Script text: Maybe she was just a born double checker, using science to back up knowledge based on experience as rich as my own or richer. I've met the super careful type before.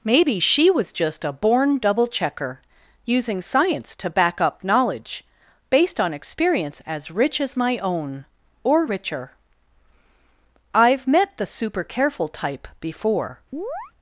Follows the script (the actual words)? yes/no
yes